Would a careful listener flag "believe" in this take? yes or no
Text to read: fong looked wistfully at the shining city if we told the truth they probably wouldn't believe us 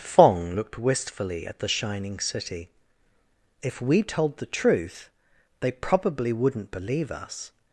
no